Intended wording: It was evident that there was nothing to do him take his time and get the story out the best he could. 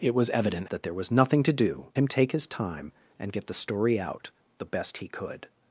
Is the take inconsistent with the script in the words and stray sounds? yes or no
no